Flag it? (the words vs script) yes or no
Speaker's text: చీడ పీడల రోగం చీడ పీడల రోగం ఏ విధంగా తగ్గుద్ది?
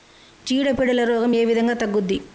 yes